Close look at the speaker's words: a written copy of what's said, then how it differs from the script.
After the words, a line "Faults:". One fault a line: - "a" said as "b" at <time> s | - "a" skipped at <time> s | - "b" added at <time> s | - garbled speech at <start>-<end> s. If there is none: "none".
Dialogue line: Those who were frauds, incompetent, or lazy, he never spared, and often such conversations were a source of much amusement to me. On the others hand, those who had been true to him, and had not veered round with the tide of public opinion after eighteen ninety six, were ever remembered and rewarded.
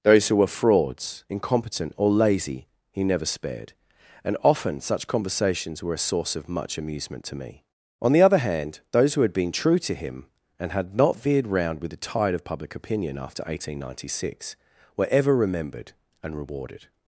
Those who were frauds, incompetent, or lazy, he never spared, and often such conversations were a source of much amusement to me. On the other hand, those who had been true to him, and had not veered round with the tide of public opinion after eighteen ninety six, were ever remembered and rewarded.
Faults:
- "others" said as "other" at 8.2 s